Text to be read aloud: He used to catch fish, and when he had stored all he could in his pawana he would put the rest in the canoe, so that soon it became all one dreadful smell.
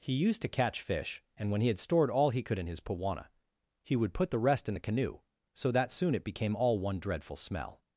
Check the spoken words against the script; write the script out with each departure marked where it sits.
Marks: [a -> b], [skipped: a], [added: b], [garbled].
He used to catch fish, and when he had stored all he could in his pawana he would put the rest in the canoe, so that soon it became all one dreadful smell.